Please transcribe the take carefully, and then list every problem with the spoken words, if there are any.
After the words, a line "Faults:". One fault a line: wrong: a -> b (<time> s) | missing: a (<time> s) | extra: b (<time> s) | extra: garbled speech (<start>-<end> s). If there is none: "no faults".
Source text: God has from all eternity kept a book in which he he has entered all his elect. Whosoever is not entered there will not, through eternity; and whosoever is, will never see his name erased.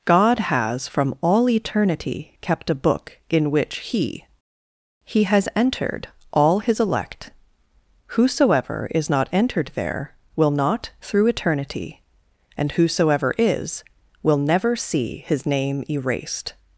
God has from all eternity kept a book in which he he has entered all his elect. Whosoever is not entered there will not, through eternity; and whosoever is, will never see his name erased.
Faults:
no faults